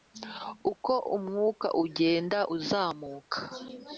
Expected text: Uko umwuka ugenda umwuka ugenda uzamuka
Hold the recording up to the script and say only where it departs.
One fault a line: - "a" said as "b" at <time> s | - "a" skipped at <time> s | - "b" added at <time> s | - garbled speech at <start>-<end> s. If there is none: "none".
- "umwuka ugenda" skipped at 2.4 s